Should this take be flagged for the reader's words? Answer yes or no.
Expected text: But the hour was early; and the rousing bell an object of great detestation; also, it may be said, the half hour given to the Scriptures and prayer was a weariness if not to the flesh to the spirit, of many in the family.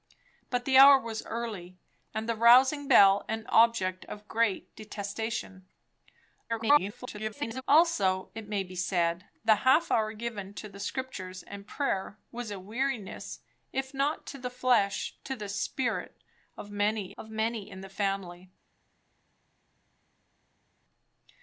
yes